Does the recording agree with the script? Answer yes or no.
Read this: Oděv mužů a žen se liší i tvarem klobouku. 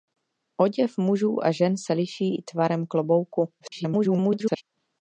no